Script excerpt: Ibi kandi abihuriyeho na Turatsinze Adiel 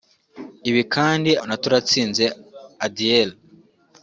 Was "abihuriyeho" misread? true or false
true